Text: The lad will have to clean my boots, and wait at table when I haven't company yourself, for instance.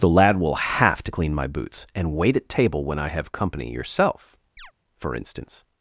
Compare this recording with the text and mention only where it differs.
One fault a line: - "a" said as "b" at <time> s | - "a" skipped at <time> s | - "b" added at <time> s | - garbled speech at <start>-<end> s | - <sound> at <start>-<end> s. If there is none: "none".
- "haven't" said as "have" at 3.1 s
- chirp at 4.6-4.7 s